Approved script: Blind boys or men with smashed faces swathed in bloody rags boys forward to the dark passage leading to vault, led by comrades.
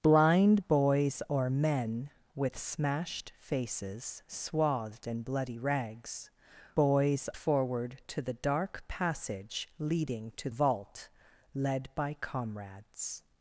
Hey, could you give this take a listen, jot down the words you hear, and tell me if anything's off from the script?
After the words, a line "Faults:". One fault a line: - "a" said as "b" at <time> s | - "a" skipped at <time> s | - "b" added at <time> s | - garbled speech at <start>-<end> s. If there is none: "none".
Blind boys or men with smashed faces swathed in bloody rags boys forward to the dark passage leading to vault, led by comrades.
Faults:
none